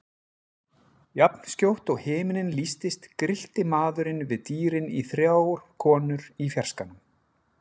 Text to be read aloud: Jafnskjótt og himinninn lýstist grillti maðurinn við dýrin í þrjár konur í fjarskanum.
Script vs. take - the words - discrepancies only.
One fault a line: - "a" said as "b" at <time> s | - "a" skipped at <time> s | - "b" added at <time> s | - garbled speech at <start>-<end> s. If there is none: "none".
none